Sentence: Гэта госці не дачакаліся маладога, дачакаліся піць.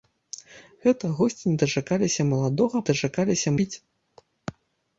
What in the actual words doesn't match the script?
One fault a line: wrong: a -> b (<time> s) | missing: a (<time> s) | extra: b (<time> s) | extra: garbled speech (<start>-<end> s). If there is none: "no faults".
no faults